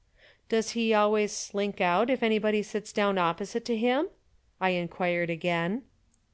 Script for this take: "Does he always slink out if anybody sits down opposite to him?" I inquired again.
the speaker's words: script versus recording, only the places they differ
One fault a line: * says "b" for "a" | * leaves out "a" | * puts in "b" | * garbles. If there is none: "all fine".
all fine